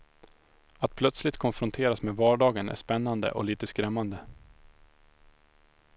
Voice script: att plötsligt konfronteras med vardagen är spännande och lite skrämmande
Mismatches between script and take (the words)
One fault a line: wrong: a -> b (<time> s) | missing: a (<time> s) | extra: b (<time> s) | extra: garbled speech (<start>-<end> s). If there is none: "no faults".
no faults